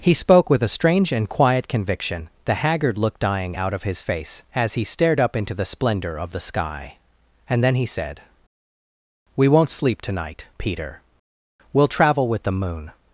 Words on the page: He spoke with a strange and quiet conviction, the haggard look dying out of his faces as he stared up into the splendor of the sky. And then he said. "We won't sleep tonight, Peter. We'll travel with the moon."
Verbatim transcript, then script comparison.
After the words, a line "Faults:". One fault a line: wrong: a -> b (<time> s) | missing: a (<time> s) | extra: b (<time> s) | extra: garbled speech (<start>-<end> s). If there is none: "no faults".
He spoke with a strange and quiet conviction, the haggard look dying out of his face as he stared up into the splendor of the sky. And then he said. "We won't sleep tonight, Peter. We'll travel with the moon."
Faults:
wrong: faces -> face (4.0 s)